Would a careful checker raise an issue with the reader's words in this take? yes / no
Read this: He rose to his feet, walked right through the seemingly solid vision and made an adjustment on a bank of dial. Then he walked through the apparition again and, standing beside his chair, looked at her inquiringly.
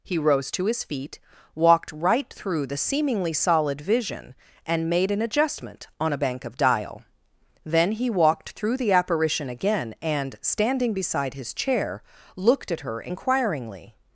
no